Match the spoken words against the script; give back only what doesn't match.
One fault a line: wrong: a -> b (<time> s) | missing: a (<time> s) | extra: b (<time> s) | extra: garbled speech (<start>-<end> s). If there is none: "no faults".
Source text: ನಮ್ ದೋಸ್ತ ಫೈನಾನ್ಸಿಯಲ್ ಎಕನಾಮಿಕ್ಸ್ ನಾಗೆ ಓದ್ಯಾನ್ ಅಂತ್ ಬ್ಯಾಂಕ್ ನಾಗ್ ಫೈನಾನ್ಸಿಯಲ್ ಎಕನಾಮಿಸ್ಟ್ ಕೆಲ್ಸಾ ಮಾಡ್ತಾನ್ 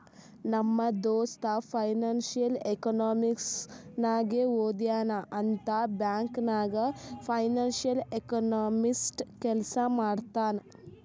no faults